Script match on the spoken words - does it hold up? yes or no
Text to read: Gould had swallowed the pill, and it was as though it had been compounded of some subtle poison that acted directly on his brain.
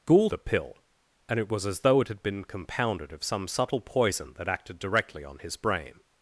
no